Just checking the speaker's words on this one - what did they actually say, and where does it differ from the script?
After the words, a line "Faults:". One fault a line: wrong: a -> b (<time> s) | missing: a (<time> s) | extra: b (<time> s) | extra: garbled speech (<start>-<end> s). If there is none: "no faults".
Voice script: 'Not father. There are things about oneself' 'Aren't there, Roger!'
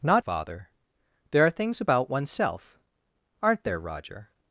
'Not father. There are things about oneself' 'Aren't there, Roger!'
Faults:
no faults